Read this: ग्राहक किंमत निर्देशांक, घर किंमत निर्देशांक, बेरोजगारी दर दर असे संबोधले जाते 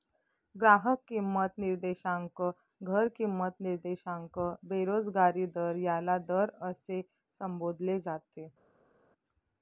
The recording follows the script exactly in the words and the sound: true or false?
false